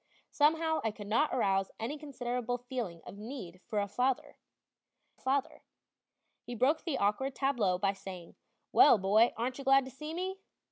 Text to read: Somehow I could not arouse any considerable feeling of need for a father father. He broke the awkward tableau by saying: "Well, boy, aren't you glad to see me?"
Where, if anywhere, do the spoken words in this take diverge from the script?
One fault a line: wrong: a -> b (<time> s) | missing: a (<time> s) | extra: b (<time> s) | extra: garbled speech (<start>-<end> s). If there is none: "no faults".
no faults